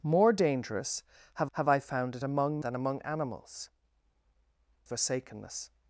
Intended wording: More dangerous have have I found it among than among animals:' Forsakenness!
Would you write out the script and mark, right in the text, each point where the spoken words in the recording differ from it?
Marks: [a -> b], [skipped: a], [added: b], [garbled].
More dangerous have have I found it among than among animals:' Forsakenness!